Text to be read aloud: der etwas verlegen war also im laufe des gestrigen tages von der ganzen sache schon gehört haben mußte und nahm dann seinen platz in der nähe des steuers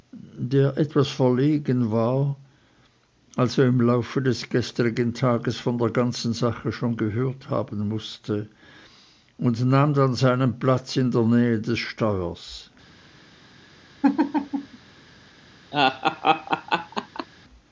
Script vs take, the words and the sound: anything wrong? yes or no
yes